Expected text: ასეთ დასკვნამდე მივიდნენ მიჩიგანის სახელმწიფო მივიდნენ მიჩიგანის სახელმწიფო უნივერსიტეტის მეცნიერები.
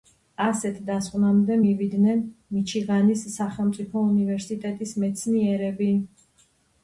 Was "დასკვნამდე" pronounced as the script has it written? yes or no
yes